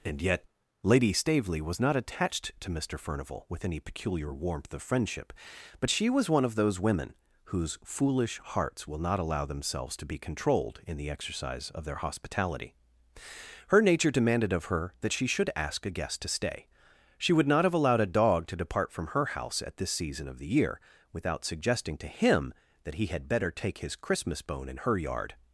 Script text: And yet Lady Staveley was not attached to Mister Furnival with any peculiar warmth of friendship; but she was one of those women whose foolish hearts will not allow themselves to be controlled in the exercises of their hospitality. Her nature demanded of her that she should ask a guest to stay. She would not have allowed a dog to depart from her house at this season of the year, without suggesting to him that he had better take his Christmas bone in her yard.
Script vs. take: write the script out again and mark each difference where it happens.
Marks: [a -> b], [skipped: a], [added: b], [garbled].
And yet Lady Staveley was not attached to Mister Furnival with any peculiar warmth of friendship; but she was one of those women whose foolish hearts will not allow themselves to be controlled in the [exercises -> exercise] of their hospitality. Her nature demanded of her that she should ask a guest to stay. She would not have allowed a dog to depart from her house at this season of the year, without suggesting to him that he had better take his Christmas bone in her yard.